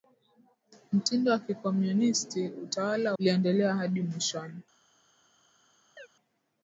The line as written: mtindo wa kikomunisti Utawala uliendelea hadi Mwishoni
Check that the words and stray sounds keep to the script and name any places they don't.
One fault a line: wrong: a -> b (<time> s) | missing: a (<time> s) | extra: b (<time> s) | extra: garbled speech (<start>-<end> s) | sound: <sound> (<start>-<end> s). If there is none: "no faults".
sound: chirp (6.0-6.1 s)